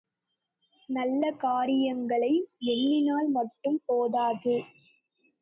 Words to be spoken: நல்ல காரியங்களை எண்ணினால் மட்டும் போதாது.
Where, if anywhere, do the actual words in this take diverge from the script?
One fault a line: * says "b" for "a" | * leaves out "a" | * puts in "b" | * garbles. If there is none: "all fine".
all fine